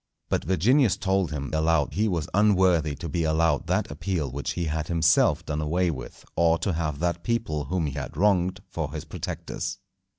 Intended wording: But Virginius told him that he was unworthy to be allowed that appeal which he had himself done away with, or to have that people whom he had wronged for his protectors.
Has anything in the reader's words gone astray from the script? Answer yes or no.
yes